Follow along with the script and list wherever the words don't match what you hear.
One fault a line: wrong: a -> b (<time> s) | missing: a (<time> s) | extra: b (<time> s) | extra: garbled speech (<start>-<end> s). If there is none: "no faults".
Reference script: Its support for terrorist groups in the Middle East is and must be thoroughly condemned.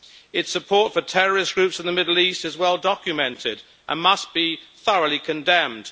extra: well documented (2.6 s)